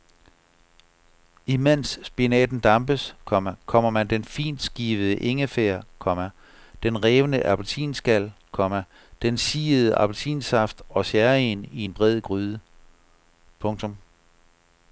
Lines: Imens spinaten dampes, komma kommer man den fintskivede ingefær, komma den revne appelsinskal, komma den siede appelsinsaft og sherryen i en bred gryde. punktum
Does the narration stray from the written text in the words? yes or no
no